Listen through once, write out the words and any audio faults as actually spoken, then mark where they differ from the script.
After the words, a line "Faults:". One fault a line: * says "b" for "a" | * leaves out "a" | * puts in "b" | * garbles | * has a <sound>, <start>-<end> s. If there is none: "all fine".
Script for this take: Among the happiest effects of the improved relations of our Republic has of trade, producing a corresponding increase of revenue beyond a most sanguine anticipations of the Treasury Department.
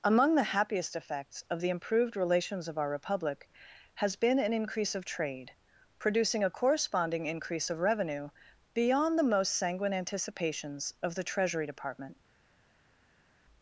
Among the happiest effects of the improved relations of our Republic has been an increase of trade, producing a corresponding increase of revenue beyond the most sanguine anticipations of the Treasury Department.
Faults:
* puts in "been an increase"
* says "the" for "a"